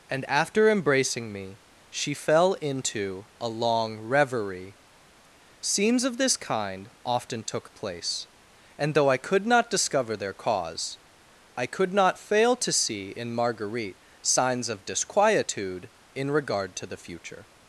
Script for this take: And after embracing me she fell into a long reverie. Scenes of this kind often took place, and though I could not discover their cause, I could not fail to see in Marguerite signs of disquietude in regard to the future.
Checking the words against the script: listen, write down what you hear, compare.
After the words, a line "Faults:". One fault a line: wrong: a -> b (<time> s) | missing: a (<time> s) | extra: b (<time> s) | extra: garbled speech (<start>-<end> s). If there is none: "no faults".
And after embracing me she fell into a long reverie. Scenes of this kind often took place, and though I could not discover their cause, I could not fail to see in Marguerite signs of disquietude in regard to the future.
Faults:
no faults